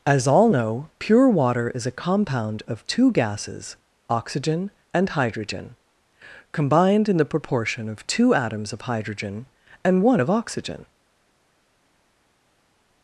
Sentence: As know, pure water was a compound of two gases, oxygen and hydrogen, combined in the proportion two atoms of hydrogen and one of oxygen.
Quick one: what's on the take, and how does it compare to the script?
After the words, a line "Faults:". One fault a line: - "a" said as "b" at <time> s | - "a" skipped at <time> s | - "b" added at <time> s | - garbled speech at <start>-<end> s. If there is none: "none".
As all know, pure water is a compound of two gases, oxygen and hydrogen, combined in the proportion of two atoms of hydrogen and one of oxygen.
Faults:
- "all" added at 0.3 s
- "was" said as "is" at 1.7 s
- "of" added at 7.9 s